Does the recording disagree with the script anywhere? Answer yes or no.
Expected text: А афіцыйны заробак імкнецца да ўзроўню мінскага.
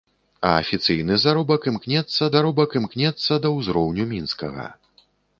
yes